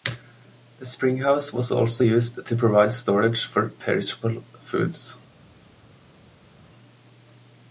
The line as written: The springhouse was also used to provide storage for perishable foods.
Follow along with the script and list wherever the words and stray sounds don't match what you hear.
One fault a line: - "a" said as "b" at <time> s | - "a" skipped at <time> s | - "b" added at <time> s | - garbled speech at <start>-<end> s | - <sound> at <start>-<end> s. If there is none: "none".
none